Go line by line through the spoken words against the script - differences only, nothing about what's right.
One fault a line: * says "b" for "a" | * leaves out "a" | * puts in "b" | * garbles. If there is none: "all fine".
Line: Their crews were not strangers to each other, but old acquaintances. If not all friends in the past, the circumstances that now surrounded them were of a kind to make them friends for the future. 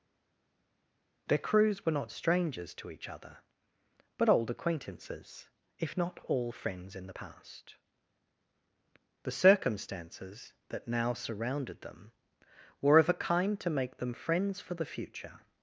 all fine